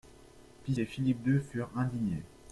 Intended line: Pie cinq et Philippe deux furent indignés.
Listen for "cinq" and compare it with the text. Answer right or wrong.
wrong